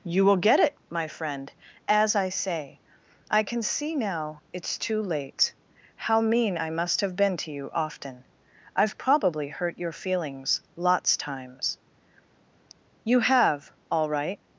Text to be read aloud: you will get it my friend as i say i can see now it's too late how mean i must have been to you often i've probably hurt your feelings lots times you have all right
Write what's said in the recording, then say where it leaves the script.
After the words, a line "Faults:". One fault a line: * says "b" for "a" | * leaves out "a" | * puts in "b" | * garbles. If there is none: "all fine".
you will get it my friend as i say i can see now it's too late how mean i must have been to you often i've probably hurt your feelings lots times you have all right
Faults:
all fine